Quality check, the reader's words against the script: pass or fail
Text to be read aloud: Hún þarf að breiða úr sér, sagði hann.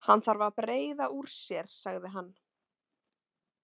fail